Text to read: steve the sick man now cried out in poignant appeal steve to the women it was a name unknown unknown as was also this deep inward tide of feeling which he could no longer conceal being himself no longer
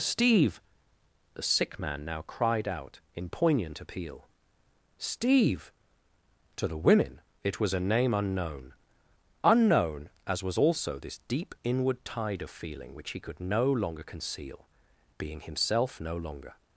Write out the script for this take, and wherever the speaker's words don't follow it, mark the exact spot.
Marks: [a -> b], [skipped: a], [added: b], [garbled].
steve the sick man now cried out in poignant appeal steve to the women it was a name unknown unknown as was also this deep inward tide of feeling which he could no longer conceal being himself no longer